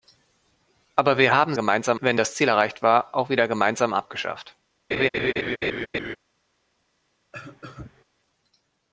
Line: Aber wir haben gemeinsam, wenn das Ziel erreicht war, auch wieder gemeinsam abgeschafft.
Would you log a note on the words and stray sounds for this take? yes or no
yes